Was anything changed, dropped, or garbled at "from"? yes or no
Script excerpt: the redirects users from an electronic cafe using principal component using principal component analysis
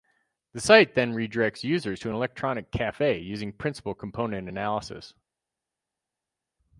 yes